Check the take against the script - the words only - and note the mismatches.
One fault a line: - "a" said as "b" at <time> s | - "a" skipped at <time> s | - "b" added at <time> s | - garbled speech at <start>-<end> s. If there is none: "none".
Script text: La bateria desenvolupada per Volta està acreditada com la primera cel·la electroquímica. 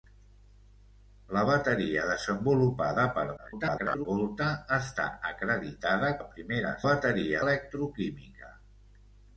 - garbled speech at 3.4-4.1 s
- "com" skipped at 6.1 s
- "cel·la" said as "bateria" at 6.9 s